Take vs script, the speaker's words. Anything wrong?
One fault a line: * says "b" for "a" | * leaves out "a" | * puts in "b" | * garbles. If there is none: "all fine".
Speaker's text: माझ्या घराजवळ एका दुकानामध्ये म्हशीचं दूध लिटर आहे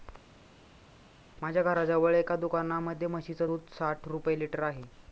* puts in "साठ रुपये"